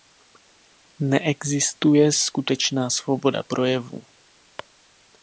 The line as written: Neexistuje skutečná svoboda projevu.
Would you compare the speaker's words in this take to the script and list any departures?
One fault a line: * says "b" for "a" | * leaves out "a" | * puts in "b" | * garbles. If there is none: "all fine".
all fine